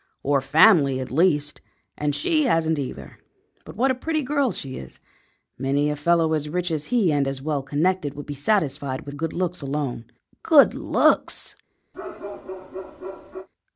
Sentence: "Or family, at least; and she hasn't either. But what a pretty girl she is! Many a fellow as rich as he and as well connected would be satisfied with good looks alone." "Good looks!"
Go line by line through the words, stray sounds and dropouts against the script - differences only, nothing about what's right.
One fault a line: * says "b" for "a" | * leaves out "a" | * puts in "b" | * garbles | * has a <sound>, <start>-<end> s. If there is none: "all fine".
* has a bark, 11.9-13.5 s